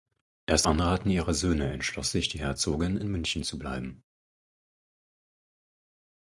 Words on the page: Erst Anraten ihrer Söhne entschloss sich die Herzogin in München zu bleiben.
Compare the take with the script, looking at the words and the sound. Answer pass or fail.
pass